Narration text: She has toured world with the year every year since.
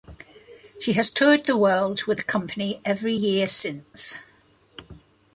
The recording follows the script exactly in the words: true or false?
false